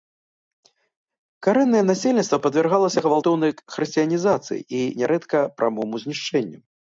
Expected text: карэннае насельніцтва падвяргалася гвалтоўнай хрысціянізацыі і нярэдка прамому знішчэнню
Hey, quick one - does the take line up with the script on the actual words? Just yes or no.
yes